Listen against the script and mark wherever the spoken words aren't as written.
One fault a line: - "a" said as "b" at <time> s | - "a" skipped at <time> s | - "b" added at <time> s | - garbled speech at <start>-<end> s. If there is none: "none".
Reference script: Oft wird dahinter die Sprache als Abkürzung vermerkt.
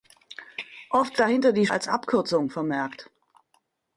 - "wird" skipped at 1.2 s
- "Sprache" skipped at 1.7 s